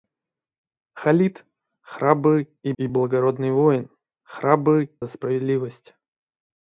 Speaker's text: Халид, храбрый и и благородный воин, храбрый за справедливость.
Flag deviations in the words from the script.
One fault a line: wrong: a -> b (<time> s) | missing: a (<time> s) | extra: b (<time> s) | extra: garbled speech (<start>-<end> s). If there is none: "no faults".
no faults